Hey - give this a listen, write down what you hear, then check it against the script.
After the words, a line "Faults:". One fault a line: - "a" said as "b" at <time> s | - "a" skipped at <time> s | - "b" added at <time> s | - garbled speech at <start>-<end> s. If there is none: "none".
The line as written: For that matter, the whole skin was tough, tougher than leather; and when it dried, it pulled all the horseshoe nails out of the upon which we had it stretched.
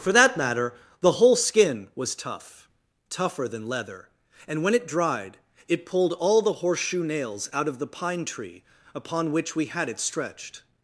For that matter, the whole skin was tough, tougher than leather; and when it dried, it pulled all the horseshoe nails out of the pine tree upon which we had it stretched.
Faults:
- "pine tree" added at 7.9 s